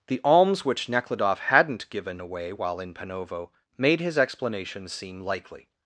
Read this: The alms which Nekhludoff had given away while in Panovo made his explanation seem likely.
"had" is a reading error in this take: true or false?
true